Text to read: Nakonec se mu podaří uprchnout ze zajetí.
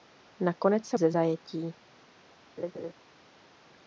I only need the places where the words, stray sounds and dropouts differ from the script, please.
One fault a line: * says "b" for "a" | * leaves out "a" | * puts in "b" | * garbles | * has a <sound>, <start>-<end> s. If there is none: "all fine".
* leaves out "mu podaří uprchnout"
* has a laugh, 2.6-2.9 s